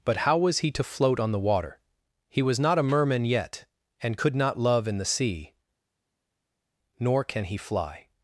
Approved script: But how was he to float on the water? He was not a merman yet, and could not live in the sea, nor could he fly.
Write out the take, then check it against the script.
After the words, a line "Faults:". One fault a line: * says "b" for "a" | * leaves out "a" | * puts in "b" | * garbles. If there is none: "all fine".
But how was he to float on the water? He was not a merman yet, and could not love in the sea, nor can he fly.
Faults:
* says "love" for "live"
* says "can" for "could"